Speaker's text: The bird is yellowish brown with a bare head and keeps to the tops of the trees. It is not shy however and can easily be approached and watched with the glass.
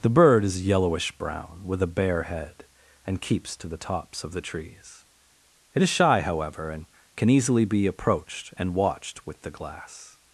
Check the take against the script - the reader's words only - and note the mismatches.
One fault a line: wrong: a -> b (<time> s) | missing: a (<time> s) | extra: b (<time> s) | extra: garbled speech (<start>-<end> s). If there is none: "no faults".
missing: not (5.9 s)